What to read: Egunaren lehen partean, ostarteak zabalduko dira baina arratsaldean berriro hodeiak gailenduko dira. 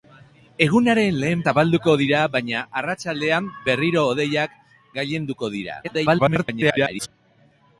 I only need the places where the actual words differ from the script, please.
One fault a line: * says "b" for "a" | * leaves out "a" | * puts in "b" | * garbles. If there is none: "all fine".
* leaves out "partean ostarteak"
* garbles